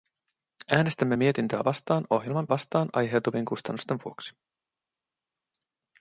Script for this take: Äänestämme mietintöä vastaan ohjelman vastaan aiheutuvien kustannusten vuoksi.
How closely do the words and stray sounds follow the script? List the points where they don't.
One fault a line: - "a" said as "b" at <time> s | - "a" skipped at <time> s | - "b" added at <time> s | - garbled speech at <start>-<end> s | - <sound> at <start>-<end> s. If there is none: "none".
none